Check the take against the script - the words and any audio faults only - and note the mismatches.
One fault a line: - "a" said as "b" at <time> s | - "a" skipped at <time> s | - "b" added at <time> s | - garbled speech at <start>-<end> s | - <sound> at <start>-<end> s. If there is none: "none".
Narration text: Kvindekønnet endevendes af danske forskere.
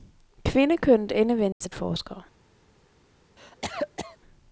- dropout at 1.5-1.6 s
- "danske" skipped at 1.7 s
- cough at 3.4-4.2 s